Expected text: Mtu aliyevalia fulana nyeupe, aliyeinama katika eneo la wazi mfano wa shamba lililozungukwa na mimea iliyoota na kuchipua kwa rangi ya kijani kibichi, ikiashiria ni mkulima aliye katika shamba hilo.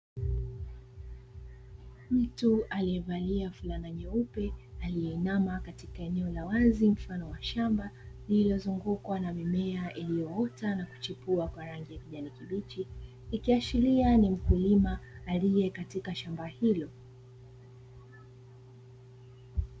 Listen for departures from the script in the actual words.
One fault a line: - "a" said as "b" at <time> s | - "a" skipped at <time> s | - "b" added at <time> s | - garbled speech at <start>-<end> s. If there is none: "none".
none